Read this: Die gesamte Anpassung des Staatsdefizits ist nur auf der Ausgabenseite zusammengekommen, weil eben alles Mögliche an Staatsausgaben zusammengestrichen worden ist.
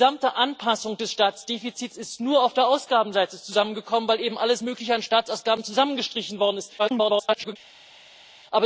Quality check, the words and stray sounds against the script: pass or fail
fail